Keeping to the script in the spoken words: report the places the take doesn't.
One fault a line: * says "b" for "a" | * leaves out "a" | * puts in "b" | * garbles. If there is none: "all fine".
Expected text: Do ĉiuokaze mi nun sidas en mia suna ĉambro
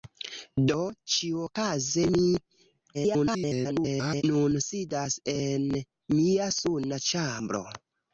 * garbles